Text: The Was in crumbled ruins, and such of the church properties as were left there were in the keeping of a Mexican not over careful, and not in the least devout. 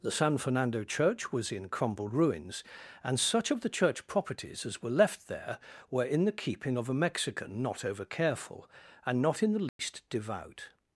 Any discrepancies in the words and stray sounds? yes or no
yes